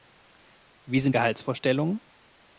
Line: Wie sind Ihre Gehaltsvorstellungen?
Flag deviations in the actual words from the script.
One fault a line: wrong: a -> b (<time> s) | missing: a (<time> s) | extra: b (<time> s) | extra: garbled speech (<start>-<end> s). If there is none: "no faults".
missing: Ihre (1.1 s)